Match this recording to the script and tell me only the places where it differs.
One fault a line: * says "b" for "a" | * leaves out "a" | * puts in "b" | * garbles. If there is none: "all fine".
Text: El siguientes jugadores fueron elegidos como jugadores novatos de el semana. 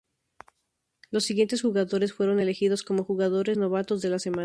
* says "Los" for "El"
* says "la" for "el"